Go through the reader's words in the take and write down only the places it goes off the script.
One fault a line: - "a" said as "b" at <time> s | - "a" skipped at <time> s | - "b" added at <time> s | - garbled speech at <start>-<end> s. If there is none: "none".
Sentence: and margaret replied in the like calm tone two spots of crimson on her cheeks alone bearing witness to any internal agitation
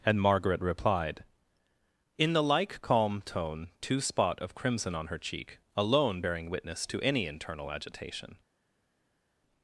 - "spots" said as "spot" at 4.0 s
- "cheeks" said as "cheek" at 5.2 s